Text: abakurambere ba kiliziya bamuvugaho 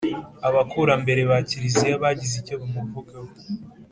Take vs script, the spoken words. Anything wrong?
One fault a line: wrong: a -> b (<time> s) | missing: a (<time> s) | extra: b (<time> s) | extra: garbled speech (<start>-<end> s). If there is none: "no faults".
extra: bagize icyo (2.0 s)